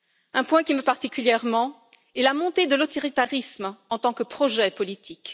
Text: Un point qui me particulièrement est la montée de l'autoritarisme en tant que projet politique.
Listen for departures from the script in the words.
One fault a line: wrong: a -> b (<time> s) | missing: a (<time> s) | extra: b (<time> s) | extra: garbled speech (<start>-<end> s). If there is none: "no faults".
no faults